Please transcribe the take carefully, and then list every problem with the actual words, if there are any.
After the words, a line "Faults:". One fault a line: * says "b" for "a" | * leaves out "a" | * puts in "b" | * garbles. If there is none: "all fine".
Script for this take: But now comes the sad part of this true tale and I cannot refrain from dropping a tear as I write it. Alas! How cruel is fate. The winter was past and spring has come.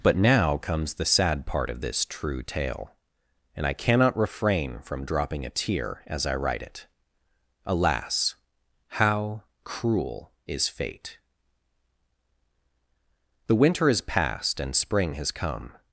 But now comes the sad part of this true tale and I cannot refrain from dropping a tear as I write it. Alas! How cruel is fate. The winter is past and spring has come.
Faults:
* says "is" for "was"